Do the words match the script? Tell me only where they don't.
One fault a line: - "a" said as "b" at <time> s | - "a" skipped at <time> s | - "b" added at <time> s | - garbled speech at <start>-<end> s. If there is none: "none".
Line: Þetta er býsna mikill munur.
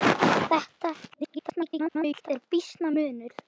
- garbled speech at 1.1-2.3 s
- "mikill" skipped at 2.9 s